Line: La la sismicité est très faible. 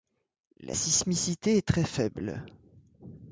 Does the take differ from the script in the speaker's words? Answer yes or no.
yes